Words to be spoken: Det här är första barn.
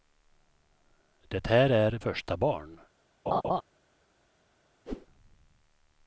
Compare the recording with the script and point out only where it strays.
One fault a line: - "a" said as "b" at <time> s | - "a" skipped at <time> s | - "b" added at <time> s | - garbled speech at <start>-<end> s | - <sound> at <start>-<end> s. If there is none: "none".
- laugh at 3.3-3.6 s
- whoosh at 4.9-5.1 s